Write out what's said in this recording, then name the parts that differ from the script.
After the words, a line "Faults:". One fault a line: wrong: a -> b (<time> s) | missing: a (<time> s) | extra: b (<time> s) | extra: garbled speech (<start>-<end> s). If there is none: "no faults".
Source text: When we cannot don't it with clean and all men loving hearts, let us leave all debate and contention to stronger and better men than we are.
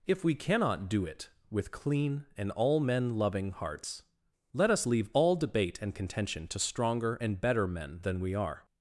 If we cannot do it with clean and all men loving hearts, let us leave all debate and contention to stronger and better men than we are.
Faults:
wrong: When -> If (0.1 s)
wrong: don't -> do (0.9 s)